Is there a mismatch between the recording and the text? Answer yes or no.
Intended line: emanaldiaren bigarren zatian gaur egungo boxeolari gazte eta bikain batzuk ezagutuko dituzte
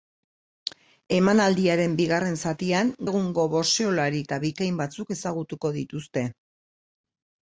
yes